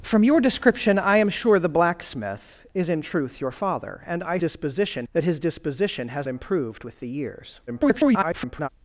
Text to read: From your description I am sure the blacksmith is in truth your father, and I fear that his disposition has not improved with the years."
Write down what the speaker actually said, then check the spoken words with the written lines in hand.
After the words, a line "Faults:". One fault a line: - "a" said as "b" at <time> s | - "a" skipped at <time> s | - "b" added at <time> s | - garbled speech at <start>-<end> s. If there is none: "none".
From your description I am sure the blacksmith is in truth your father, and I disposition that his disposition has improved with the years." [garbled]
Faults:
- "fear" said as "disposition" at 4.4 s
- "not" skipped at 6.3 s
- garbled speech at 7.7-8.7 s